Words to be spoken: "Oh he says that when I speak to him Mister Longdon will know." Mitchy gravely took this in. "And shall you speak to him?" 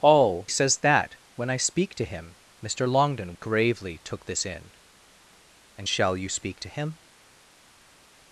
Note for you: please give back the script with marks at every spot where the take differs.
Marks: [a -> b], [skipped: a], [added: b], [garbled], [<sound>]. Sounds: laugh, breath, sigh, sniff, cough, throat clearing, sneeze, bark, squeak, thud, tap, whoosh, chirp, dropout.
"Oh [skipped: he] says that when I speak to him Mister Longdon [skipped: will know." Mitchy] gravely took this in. "And shall you speak to him?"